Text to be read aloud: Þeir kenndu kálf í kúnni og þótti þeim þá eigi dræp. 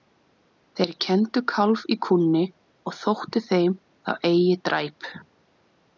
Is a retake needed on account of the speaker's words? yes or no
no